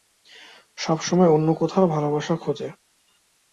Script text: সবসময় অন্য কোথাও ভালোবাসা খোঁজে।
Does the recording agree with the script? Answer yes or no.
yes